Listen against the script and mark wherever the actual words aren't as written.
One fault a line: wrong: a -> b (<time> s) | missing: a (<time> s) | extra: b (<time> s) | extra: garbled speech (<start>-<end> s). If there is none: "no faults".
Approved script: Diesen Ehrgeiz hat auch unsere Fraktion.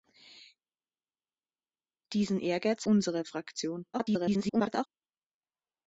missing: hat auch (2.9 s)
extra: garbled speech (3.9-4.9 s)